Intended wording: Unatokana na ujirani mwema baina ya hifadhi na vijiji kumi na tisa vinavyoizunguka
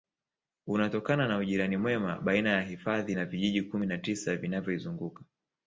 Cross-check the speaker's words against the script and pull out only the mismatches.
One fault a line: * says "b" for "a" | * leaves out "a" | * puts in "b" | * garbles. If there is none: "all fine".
all fine